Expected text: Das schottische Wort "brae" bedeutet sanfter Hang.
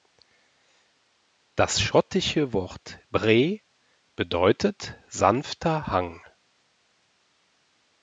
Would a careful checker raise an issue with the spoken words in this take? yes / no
no